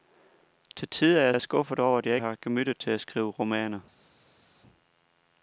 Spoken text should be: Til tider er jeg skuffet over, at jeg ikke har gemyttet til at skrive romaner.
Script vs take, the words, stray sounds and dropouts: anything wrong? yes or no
yes